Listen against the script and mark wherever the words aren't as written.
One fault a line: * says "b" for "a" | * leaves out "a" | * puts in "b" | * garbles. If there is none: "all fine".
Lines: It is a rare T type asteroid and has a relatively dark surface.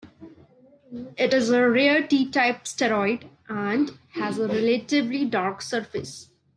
all fine